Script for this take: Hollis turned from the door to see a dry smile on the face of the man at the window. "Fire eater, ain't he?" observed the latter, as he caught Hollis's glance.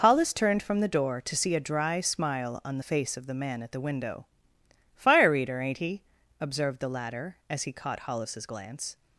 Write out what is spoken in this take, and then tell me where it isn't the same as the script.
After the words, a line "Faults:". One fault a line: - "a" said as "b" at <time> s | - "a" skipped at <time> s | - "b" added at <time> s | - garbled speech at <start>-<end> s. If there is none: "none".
Hollis turned from the door to see a dry smile on the face of the man at the window. "Fire eater, ain't he?" observed the latter, as he caught Hollis's glance.
Faults:
none